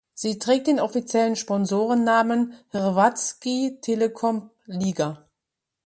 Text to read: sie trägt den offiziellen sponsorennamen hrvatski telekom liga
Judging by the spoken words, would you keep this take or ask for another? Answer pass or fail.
pass